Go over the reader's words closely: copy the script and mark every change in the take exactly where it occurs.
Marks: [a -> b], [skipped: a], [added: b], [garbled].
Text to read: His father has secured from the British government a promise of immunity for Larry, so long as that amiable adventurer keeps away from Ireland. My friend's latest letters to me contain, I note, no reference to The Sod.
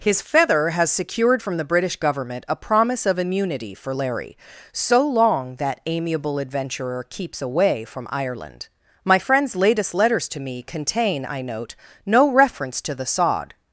His [father -> feather] has secured from the British government a promise of immunity for Larry, so long [skipped: as] that amiable adventurer keeps away from Ireland. My friend's latest letters to me contain, I note, no reference to The Sod.